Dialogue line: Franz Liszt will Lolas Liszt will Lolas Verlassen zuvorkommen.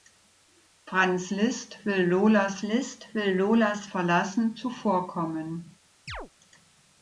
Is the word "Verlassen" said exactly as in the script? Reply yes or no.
yes